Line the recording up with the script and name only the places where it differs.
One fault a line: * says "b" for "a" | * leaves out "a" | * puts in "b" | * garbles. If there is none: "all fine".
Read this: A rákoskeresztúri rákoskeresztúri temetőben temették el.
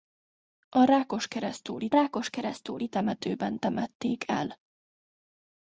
all fine